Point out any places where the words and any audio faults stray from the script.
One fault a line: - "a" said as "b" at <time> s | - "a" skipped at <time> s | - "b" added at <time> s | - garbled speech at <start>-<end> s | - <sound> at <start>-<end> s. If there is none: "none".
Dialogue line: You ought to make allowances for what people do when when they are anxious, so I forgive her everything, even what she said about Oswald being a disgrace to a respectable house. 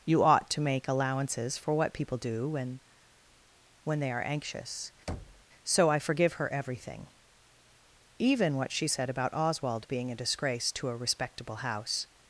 - thud at 5.1-5.5 s